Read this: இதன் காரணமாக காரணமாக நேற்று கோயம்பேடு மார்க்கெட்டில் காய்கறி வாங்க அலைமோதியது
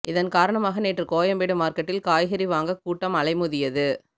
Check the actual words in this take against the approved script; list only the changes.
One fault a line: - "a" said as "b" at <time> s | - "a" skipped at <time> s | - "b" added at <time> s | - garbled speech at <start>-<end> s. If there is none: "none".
- "காரணமாக" skipped at 0.8 s
- "கூட்டம்" added at 2.8 s